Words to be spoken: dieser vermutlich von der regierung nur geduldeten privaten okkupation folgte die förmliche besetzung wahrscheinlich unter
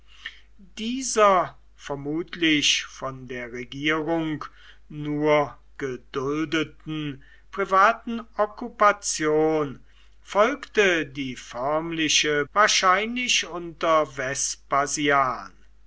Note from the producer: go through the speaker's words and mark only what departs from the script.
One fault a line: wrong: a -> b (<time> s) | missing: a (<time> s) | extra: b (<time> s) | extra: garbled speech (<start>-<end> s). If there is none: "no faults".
missing: besetzung (12.5 s)